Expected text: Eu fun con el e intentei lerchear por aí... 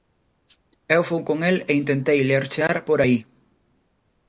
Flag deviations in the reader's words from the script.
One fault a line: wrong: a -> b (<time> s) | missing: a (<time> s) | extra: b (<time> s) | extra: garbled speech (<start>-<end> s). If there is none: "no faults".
no faults